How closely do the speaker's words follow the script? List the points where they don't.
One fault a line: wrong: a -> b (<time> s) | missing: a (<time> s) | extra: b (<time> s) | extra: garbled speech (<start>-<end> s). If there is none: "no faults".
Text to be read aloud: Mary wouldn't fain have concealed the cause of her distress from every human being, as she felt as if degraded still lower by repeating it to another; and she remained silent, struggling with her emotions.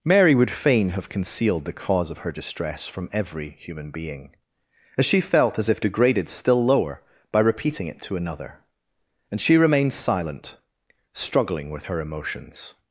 wrong: wouldn't -> would (0.3 s)